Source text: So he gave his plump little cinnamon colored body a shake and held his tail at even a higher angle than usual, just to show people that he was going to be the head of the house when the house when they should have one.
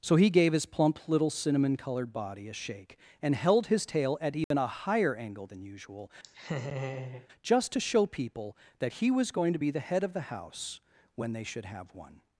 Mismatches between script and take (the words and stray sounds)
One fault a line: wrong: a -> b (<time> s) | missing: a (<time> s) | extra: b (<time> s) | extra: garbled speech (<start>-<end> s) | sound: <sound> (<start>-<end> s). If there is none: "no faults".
sound: dropout (4.4-4.5 s)
sound: laugh (6.2-7.3 s)
missing: the house when (11.3 s)